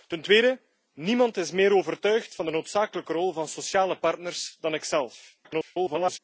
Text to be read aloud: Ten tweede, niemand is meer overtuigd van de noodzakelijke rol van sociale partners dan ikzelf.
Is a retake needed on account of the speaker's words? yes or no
yes